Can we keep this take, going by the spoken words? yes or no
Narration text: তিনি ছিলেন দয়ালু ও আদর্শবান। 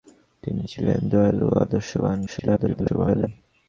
no